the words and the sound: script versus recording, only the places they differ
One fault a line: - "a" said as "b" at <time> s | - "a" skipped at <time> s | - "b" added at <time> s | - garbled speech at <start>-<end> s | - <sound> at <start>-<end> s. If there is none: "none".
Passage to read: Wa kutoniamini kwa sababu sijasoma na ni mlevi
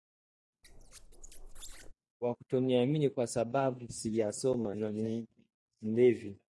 - squeak at 0.6-1.9 s